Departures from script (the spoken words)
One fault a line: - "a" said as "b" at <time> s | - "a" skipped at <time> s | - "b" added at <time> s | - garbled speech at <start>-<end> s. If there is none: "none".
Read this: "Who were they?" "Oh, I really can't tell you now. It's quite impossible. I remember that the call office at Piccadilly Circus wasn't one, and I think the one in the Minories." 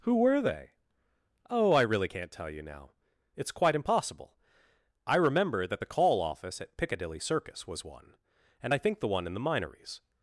- "wasn't" said as "was" at 7.7 s